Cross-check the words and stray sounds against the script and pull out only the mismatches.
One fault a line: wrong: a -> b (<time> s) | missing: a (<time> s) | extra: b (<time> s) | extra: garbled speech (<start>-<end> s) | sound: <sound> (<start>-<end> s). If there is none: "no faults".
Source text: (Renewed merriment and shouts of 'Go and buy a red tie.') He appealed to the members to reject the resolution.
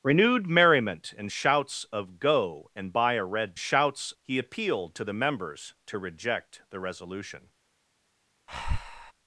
wrong: tie -> shouts (3.6 s)
sound: breath (8.5-9.1 s)